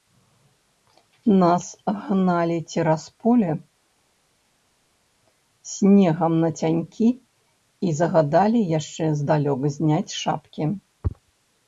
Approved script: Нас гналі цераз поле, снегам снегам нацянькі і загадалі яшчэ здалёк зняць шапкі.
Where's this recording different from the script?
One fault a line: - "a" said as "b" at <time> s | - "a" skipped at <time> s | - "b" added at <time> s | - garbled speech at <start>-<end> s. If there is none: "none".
- "снегам" skipped at 6.3 s